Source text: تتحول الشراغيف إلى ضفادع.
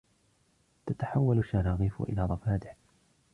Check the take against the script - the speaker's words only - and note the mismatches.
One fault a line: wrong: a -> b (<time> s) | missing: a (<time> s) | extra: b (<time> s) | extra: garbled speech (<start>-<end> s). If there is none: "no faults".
no faults